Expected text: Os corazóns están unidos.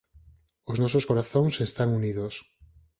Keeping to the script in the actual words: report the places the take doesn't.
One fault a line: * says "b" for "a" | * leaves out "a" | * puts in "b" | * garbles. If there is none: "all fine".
* puts in "nosos"